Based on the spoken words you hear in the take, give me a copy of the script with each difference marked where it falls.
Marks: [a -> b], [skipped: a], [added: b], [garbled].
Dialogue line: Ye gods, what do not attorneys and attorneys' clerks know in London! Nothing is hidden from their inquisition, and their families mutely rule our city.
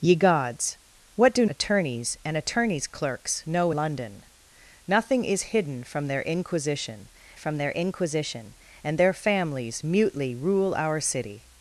Ye gods, what do [skipped: not] attorneys and attorneys' clerks know [skipped: in] London! Nothing is hidden from their inquisition, [added: from their inquisition] and their families mutely rule our city.